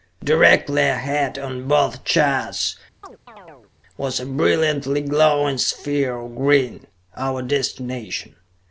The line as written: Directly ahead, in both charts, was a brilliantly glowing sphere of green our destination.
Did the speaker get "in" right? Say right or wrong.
wrong